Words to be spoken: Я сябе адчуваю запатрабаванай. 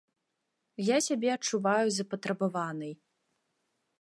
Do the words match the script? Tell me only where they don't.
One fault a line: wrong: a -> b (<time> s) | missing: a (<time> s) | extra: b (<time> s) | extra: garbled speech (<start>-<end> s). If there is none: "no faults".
no faults